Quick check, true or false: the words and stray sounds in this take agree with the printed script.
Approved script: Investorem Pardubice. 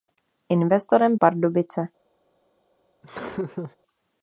false